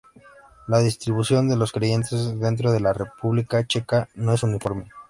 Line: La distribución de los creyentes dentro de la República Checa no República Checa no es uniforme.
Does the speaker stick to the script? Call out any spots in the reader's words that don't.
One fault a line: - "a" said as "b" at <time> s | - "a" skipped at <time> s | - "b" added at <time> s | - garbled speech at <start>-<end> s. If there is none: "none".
- "República Checa no" skipped at 4.3 s